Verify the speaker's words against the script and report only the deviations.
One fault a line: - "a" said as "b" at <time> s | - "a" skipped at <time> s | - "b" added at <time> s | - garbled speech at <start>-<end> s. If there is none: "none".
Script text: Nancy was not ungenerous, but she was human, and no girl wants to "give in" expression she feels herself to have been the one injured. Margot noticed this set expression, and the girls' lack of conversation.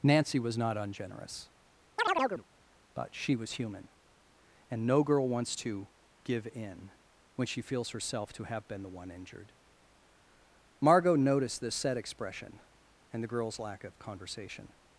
- "expression" said as "when" at 7.3 s